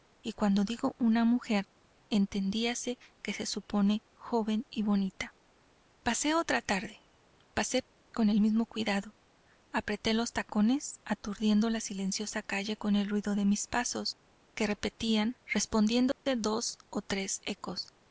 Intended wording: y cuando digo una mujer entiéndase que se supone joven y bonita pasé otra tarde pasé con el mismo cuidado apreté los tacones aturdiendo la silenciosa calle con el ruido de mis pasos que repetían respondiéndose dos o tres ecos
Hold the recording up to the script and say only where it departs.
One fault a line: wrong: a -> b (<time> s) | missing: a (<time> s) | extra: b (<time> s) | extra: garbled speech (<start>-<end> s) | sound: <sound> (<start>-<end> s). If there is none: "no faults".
sound: dropout (16.1-16.3 s)